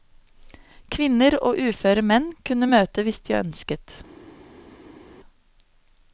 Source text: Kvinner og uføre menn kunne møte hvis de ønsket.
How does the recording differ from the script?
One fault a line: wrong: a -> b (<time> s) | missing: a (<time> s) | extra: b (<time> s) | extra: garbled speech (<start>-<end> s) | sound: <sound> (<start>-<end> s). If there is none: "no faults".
no faults